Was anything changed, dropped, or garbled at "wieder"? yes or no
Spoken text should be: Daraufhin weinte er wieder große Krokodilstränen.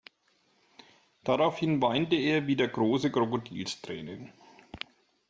no